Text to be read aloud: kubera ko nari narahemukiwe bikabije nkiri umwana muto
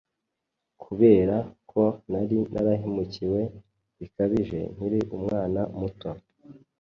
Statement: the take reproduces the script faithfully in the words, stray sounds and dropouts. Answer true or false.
true